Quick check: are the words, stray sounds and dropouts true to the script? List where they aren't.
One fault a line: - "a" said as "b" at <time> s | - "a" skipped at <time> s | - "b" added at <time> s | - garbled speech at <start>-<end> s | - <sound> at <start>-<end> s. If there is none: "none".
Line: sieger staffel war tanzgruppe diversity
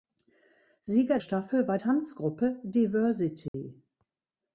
- dropout at 3.5-3.5 s